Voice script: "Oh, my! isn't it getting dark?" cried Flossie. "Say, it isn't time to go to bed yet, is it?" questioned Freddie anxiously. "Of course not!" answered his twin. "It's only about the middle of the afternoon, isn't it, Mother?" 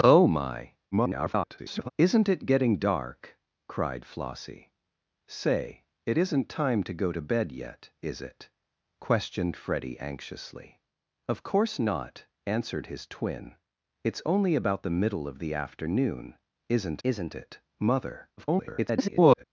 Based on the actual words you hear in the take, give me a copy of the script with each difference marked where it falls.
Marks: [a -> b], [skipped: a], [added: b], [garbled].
"Oh, my! [garbled] isn't it getting dark?" cried Flossie. "Say, it isn't time to go to bed yet, is it?" questioned Freddie anxiously. "Of course not!" answered his twin. "It's only about the middle of the afternoon, isn't [added: isn't] it, Mother?" [garbled]